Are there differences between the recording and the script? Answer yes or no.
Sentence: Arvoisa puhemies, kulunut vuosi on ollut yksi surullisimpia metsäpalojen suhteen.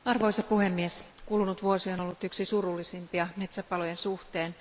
no